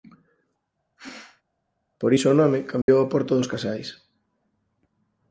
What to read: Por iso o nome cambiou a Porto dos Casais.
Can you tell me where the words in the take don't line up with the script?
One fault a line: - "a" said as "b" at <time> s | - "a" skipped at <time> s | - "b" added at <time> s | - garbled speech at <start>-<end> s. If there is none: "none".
none